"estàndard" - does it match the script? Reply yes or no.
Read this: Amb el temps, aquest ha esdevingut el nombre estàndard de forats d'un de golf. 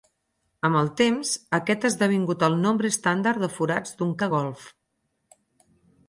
yes